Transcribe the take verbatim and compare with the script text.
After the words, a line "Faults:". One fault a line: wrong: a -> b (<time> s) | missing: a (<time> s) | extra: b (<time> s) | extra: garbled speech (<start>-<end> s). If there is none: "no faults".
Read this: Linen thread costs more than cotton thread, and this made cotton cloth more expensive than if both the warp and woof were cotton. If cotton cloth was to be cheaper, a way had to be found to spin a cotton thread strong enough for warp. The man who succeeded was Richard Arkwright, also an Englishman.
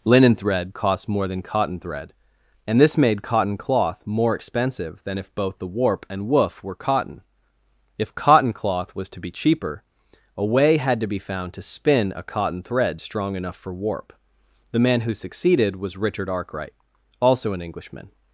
Linen thread cost more than cotton thread, and this made cotton cloth more expensive than if both the warp and woof were cotton. If cotton cloth was to be cheaper, a way had to be found to spin a cotton thread strong enough for warp. The man who succeeded was Richard Arkwright, also an Englishman.
Faults:
wrong: costs -> cost (0.7 s)